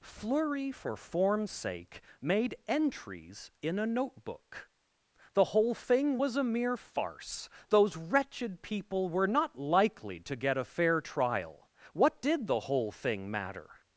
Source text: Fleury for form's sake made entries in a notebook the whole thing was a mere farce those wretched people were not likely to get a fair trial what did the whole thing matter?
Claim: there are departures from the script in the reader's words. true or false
false